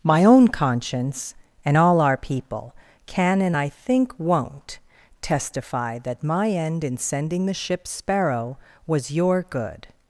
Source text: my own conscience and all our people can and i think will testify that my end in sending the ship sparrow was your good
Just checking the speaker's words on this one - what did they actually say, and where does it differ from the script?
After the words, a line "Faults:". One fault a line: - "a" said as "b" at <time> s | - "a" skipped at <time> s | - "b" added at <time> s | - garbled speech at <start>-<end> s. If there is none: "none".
my own conscience and all our people can and i think won't testify that my end in sending the ship sparrow was your good
Faults:
- "will" said as "won't" at 4.2 s